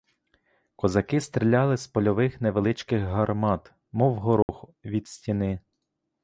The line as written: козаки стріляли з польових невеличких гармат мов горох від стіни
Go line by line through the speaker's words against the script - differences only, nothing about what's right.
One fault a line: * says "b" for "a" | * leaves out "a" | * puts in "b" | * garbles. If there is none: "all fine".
all fine